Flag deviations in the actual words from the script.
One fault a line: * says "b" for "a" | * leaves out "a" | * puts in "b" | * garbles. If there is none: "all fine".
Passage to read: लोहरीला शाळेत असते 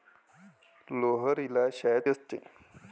all fine